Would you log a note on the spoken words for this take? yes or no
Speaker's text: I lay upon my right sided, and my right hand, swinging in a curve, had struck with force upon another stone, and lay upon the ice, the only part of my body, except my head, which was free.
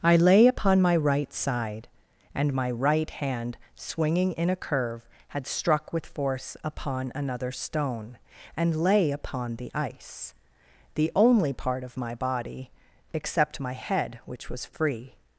yes